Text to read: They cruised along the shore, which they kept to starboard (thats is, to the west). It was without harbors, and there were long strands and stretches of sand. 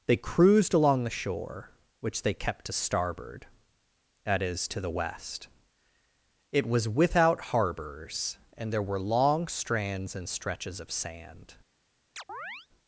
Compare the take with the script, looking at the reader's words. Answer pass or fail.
fail